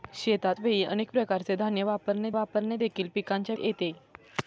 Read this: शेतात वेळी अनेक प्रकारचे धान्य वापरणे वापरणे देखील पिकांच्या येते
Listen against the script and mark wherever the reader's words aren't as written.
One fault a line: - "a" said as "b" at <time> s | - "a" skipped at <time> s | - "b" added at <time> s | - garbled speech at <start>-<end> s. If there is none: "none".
none